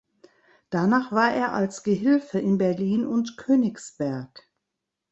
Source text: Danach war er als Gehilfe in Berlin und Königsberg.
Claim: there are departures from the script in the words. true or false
false